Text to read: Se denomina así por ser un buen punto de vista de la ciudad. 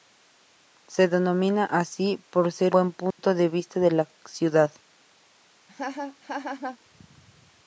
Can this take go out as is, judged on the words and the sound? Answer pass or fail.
fail